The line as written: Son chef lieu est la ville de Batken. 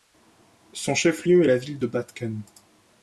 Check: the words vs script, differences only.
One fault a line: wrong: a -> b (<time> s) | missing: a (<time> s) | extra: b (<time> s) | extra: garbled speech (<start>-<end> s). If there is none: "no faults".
no faults